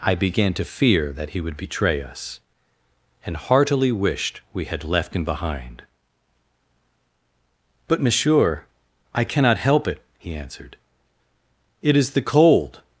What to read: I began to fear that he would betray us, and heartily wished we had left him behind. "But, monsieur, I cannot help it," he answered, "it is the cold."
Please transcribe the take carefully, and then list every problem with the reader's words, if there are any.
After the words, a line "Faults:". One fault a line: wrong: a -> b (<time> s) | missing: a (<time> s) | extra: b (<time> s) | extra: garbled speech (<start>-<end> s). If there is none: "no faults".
I began to fear that he would betray us, and heartily wished we had left him behind. "But, monsieur, I cannot help it," he answered, "it is the cold."
Faults:
no faults